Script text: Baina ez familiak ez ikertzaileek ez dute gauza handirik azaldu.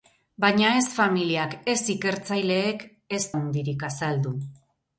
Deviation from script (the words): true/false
true